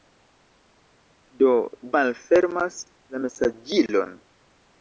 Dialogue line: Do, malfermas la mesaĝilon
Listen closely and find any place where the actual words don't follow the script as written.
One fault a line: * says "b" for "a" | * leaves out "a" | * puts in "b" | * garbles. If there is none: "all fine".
all fine